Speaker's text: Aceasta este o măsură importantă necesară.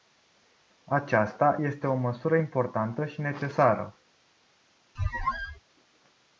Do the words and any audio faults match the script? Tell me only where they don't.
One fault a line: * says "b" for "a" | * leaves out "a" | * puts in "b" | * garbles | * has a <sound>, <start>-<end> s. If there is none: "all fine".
* puts in "și"
* has a squeak, 5.0-5.6 s